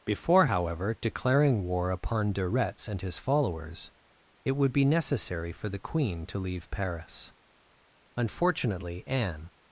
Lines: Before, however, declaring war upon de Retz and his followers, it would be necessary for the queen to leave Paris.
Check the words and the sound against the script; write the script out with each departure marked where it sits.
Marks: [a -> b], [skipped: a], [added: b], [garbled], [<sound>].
Before, however, declaring war upon de Retz and his followers, it would be necessary for the queen to leave Paris. [added: Unfortunately Anne]